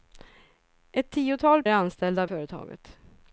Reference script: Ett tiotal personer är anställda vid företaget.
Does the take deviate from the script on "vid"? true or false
true